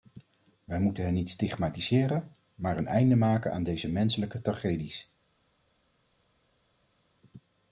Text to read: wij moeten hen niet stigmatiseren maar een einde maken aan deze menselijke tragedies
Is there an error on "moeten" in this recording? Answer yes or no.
no